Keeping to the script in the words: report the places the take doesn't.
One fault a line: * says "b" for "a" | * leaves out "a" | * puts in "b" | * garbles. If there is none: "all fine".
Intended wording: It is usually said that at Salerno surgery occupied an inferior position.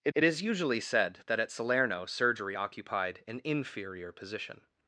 * puts in "it"